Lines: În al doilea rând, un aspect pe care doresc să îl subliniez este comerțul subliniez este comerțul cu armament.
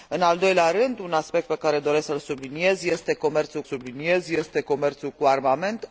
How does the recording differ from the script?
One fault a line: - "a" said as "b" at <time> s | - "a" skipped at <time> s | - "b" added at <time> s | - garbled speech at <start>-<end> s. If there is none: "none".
none